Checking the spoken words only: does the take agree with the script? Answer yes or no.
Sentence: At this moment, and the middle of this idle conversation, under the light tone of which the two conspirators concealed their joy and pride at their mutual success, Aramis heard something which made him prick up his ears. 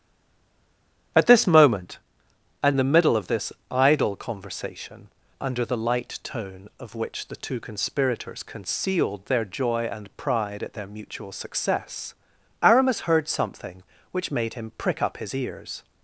yes